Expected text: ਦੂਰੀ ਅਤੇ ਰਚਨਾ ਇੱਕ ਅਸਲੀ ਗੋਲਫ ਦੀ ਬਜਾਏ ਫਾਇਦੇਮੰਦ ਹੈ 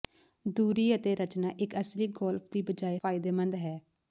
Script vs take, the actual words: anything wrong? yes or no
no